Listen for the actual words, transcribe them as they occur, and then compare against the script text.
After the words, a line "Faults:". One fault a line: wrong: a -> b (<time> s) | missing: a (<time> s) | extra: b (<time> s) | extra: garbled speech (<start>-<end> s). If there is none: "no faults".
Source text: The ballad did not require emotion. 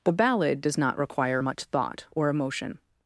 The ballad does not require much thought or emotion.
Faults:
wrong: did -> does (0.6 s)
extra: much thought or (1.4 s)